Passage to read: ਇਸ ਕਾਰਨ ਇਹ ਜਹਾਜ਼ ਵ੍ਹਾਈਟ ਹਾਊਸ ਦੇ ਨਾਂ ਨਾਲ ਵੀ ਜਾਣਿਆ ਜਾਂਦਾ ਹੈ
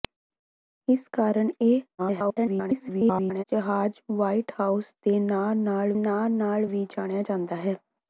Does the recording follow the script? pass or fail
fail